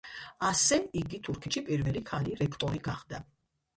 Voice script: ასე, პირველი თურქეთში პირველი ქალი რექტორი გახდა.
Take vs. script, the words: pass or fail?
fail